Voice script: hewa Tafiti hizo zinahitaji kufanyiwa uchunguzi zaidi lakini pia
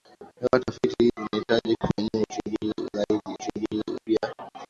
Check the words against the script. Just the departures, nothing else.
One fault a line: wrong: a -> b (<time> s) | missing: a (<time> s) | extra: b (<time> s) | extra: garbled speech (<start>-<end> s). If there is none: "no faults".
missing: hizo (1.1 s)
wrong: lakini -> uchunguzi (3.4 s)